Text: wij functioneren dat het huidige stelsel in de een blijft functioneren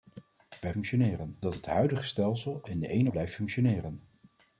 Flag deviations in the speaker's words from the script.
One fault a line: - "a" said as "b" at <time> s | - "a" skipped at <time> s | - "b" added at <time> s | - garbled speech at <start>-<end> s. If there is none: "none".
none